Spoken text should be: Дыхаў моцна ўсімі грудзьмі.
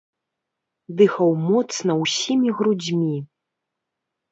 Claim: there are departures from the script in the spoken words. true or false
false